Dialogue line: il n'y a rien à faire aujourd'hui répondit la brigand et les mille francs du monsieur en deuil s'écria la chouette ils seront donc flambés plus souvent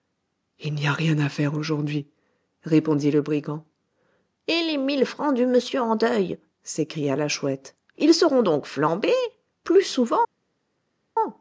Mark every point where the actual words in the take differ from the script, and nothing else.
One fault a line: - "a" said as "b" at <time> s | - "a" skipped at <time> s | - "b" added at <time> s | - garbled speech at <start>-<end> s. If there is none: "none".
- "la" said as "le" at 3.1 s